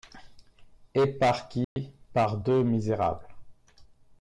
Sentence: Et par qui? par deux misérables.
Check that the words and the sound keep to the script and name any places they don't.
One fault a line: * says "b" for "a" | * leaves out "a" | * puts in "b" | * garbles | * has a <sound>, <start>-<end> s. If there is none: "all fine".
* has a dropout, 1.6-1.8 s